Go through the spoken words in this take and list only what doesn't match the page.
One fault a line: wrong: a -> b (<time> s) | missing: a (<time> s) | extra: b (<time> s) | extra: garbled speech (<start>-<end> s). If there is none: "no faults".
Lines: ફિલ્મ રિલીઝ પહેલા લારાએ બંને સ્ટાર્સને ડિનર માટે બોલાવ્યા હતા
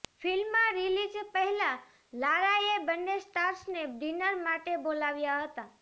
no faults